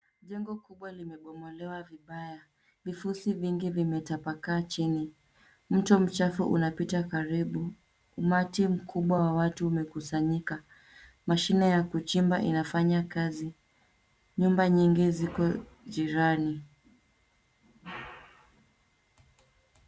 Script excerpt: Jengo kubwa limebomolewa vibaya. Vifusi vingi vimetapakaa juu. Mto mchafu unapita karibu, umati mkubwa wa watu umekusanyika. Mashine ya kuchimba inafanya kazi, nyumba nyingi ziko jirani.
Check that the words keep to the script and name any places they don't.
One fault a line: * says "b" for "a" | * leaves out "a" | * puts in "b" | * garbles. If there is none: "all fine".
* says "chini" for "juu"